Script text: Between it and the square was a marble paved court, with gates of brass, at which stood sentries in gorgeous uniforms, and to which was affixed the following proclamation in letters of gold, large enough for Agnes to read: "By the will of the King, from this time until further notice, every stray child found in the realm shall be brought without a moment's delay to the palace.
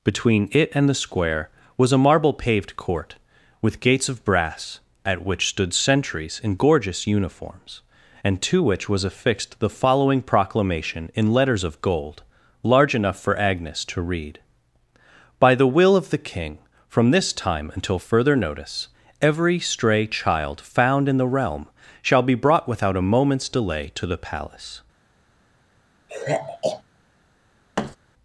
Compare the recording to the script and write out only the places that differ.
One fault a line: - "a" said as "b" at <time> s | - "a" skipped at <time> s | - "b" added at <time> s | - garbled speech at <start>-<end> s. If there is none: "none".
none